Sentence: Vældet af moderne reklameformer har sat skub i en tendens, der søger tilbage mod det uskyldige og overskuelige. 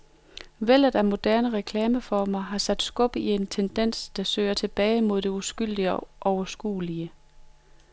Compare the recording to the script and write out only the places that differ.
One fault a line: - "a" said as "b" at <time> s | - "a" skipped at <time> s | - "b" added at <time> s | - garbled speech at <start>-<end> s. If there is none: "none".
none